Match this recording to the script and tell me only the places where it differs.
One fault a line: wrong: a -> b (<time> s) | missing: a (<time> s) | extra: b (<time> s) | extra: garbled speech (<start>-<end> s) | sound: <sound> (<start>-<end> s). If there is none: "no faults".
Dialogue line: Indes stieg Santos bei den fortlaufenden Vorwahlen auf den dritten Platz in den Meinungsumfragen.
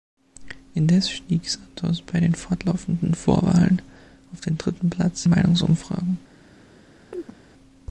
missing: in den (5.3 s)
sound: chirp (7.1-7.4 s)